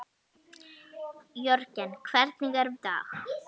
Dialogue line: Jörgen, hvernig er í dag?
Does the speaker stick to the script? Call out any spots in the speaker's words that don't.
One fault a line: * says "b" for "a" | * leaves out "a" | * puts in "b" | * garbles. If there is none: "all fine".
all fine